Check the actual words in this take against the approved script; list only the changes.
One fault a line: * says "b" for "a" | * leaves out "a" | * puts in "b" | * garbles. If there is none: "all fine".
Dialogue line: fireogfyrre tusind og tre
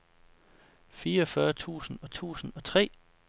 * puts in "tusind og"